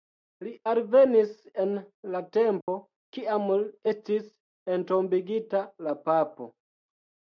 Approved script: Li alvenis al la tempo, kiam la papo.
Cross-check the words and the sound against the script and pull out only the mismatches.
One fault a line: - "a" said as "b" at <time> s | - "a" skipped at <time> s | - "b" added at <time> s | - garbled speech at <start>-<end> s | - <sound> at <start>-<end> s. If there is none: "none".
- "al" said as "en" at 1.6 s
- dropout at 2.6-2.7 s
- "estis entombigita" added at 3.9 s